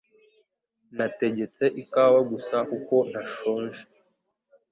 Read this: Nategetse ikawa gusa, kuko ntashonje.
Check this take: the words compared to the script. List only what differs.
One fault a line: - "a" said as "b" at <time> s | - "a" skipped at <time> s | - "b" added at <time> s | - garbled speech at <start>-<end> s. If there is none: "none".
none